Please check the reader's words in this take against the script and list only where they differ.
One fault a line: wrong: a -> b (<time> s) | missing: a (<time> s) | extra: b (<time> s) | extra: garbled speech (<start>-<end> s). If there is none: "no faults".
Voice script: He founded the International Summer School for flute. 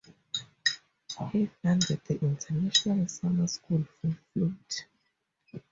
no faults